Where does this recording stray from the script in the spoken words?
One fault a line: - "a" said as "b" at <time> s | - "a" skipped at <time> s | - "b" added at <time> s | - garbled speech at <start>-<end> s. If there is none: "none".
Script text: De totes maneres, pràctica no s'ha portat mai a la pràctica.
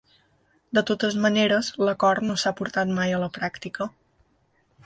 - "pràctica" said as "l'acord" at 1.9 s